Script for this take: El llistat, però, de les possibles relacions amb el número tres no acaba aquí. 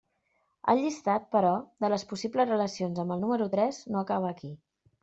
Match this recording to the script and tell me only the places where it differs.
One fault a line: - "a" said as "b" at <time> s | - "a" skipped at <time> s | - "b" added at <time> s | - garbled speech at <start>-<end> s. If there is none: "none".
none